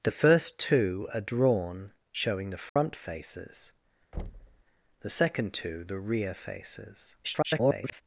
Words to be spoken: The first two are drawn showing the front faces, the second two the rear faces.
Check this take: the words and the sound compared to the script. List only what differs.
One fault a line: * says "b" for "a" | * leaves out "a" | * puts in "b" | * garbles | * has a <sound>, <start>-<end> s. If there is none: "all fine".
* has a dropout, 2.7-2.8 s
* has a thud, 4.1-4.6 s
* garbles